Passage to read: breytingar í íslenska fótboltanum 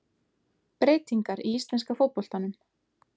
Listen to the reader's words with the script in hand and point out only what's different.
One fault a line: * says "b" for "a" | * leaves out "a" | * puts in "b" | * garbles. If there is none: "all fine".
all fine